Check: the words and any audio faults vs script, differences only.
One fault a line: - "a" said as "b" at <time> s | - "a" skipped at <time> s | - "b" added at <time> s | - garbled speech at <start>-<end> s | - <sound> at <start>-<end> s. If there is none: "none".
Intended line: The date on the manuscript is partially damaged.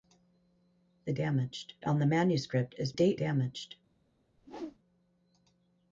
- "date" said as "damaged" at 1.1 s
- "partially" said as "date" at 2.9 s
- whoosh at 4.4-4.8 s